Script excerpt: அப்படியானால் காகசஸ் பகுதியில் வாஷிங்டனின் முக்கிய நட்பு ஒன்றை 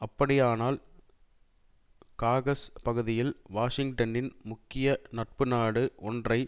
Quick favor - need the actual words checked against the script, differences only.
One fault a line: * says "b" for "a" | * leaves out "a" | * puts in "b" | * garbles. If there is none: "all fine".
* puts in "நாடு"